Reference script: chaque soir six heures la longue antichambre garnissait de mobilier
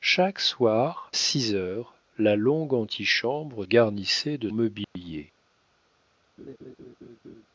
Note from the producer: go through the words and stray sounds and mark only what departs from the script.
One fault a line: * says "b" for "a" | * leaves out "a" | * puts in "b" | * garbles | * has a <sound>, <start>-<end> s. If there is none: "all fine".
* has a dropout, 4.8-5.0 s
* has a laugh, 6.4-7.5 s